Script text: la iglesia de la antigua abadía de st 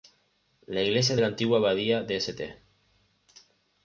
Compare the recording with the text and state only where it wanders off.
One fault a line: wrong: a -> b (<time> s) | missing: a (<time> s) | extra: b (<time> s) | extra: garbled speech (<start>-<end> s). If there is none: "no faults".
no faults